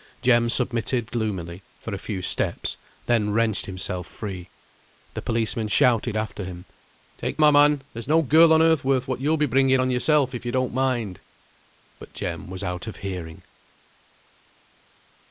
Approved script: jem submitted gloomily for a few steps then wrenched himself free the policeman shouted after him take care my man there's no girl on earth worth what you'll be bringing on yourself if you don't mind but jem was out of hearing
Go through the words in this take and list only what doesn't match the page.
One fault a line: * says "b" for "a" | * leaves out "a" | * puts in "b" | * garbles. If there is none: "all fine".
* leaves out "care"